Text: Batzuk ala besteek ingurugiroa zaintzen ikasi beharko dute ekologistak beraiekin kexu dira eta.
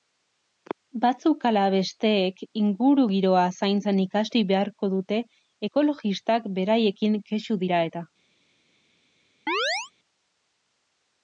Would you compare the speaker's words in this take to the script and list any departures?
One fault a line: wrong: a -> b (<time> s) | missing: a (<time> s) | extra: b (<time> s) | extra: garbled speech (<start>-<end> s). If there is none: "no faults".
no faults